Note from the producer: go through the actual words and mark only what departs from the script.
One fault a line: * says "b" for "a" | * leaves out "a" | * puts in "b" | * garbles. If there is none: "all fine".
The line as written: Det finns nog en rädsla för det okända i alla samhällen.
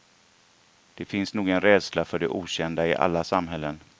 all fine